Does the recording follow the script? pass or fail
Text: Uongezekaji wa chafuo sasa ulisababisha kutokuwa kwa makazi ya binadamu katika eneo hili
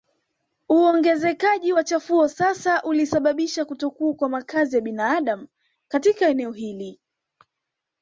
pass